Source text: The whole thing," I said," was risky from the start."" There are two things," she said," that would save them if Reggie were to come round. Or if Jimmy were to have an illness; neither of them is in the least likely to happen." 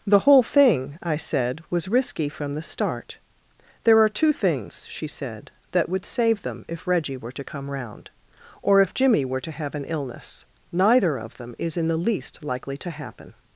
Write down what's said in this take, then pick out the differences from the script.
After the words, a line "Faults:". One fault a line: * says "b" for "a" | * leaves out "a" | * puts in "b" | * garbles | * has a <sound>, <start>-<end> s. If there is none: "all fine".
The whole thing," I said," was risky from the start."" There are two things," she said," that would save them if Reggie were to come round. Or if Jimmy were to have an illness; neither of them is in the least likely to happen."
Faults:
all fine